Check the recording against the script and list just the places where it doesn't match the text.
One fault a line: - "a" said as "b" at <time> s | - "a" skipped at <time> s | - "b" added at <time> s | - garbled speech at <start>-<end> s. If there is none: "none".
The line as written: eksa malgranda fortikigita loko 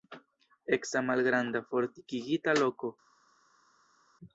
none